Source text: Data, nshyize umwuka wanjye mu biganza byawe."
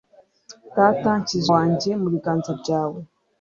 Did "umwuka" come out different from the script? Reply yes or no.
yes